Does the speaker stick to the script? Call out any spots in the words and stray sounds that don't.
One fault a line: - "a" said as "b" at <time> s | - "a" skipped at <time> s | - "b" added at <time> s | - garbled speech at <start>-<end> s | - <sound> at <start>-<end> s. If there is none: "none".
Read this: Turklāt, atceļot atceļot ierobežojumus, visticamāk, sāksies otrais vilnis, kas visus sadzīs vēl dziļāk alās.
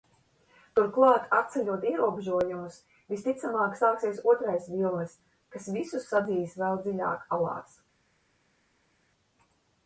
- "atceļot" skipped at 1.9 s